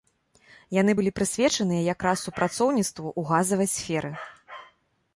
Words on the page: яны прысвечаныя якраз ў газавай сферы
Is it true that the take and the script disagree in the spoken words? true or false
true